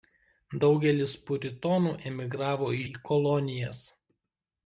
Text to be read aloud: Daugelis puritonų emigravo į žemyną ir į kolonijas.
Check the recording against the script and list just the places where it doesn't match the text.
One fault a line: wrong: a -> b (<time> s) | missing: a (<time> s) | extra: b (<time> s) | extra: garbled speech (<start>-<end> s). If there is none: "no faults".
missing: žemyną ir (2.8 s)